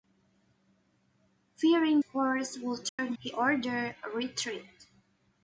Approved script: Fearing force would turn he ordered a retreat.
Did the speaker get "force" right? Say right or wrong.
right